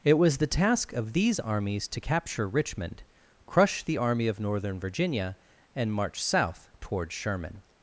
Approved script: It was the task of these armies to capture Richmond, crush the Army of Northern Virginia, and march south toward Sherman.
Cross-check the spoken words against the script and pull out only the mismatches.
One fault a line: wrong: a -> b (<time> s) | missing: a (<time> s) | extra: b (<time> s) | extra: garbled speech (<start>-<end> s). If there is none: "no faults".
no faults